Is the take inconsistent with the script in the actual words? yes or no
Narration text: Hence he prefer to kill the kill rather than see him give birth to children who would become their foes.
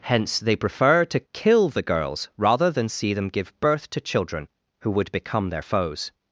yes